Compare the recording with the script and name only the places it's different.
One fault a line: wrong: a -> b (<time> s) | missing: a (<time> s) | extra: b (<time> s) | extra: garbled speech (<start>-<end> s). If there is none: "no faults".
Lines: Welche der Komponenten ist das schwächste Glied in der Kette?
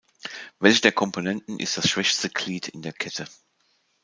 no faults